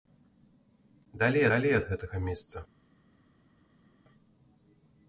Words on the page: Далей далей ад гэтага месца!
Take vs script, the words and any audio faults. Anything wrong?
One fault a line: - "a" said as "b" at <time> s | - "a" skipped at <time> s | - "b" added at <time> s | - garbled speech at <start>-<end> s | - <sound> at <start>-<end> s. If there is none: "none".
none